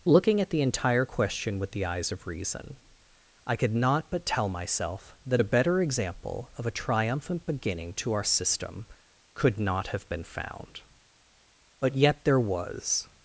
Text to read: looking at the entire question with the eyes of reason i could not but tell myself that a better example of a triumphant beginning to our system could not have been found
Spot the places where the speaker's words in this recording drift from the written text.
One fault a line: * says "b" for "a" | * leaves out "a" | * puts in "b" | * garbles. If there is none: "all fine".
* puts in "but yet there was"